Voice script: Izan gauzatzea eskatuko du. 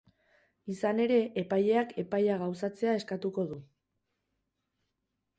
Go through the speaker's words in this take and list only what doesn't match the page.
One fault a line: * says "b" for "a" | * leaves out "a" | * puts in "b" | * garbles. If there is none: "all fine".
* puts in "ere epaileak epaia"